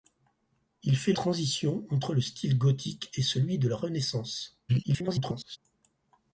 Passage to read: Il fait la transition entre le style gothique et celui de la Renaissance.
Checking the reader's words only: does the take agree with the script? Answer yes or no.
no